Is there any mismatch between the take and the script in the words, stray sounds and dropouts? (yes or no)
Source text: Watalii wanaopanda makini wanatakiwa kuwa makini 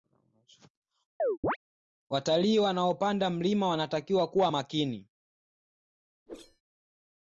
yes